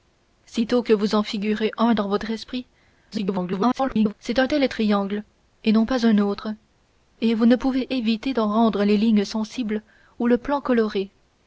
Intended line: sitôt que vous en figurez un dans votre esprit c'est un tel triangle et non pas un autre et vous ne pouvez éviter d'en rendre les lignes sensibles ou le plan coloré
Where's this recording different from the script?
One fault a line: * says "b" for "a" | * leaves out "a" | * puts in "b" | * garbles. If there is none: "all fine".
* garbles